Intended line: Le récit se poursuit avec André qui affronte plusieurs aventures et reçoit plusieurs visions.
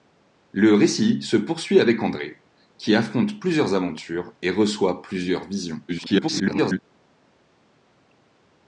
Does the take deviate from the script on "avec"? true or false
false